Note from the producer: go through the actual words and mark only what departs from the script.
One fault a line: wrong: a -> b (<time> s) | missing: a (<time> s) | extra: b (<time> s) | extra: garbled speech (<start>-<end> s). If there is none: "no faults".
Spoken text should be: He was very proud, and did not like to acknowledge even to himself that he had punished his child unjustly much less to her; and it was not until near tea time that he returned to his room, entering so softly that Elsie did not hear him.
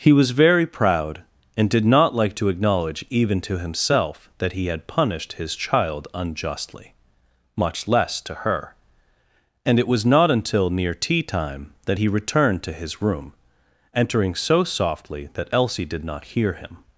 no faults